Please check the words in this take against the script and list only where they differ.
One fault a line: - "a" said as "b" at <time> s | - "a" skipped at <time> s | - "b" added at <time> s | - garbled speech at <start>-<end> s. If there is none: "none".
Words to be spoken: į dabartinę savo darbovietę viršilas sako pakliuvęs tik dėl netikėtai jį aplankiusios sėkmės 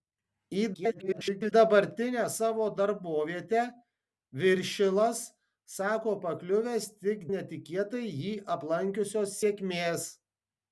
- garbled speech at 0.7-1.5 s
- "dėl" skipped at 7.3 s